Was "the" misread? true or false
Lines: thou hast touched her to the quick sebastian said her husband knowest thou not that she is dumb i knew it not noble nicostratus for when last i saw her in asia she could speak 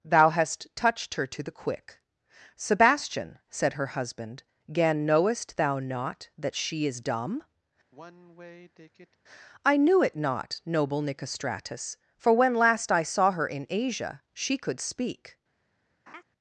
false